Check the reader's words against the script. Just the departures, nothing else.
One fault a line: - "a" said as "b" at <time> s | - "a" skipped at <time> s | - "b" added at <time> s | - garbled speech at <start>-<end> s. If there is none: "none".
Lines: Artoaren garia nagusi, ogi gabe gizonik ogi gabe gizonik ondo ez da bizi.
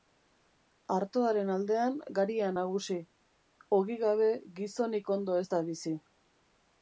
- "aldean" added at 1.6 s
- "ogi gabe gizonik" skipped at 5.1 s